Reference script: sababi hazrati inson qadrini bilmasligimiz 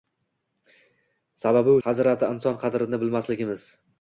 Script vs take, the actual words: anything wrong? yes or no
no